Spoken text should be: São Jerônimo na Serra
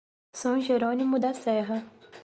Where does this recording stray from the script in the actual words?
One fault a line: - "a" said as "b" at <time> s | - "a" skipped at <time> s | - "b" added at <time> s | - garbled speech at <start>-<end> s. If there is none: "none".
- "na" said as "da" at 1.2 s